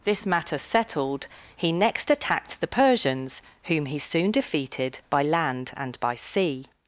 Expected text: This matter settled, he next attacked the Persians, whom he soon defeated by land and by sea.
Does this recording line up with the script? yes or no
yes